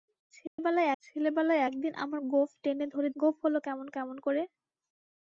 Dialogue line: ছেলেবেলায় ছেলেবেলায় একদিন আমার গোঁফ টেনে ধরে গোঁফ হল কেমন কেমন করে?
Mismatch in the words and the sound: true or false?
true